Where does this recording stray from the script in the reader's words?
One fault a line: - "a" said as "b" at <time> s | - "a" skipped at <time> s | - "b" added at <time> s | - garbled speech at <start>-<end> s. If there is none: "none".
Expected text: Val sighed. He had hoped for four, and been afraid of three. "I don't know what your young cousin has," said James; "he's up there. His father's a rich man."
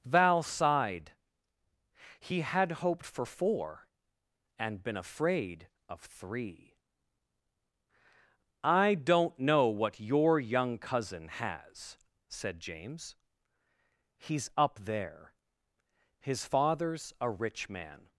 none